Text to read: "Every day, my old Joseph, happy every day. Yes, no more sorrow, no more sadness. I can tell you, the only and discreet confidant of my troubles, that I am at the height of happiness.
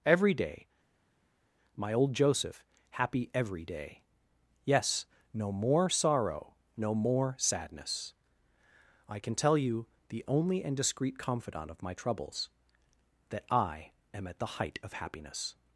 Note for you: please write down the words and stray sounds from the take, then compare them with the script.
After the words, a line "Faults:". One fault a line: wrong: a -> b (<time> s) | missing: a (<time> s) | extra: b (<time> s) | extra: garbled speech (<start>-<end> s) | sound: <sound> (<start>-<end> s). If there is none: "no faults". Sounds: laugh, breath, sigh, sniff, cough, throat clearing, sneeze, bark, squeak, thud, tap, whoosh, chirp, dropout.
"Every day, my old Joseph, happy every day. Yes, no more sorrow, no more sadness. I can tell you, the only and discreet confidant of my troubles, that I am at the height of happiness.
Faults:
no faults